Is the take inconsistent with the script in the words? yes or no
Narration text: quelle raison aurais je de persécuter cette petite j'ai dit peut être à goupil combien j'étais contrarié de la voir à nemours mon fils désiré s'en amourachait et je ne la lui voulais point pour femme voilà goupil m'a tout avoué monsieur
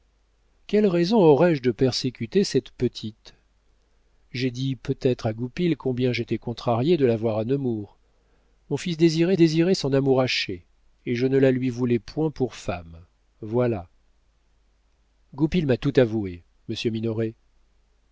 yes